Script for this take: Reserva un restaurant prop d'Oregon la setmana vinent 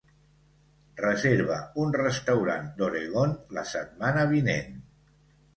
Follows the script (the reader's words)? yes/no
no